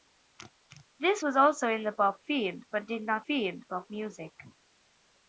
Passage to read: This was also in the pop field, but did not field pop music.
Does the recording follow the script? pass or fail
pass